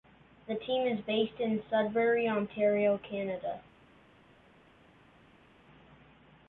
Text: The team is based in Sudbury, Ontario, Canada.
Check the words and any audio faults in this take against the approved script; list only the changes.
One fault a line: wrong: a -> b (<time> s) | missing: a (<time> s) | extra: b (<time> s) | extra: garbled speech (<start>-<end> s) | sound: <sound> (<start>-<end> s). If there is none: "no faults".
no faults